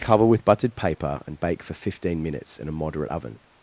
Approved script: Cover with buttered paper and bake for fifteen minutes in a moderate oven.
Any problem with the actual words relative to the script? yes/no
no